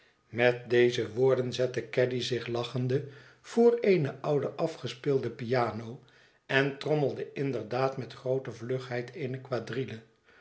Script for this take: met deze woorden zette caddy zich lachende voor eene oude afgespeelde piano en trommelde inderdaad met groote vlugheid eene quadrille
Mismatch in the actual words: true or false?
false